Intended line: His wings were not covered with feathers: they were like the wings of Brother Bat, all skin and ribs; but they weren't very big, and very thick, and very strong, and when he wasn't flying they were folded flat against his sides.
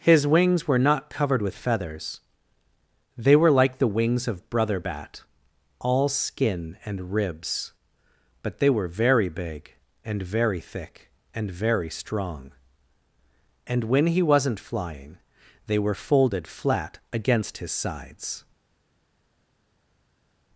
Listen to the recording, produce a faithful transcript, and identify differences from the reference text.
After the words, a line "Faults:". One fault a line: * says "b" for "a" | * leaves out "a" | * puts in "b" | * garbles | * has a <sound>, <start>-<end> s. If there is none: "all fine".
His wings were not covered with feathers: they were like the wings of Brother Bat, all skin and ribs; but they were very big, and very thick, and very strong, and when he wasn't flying they were folded flat against his sides.
Faults:
* says "were" for "weren't"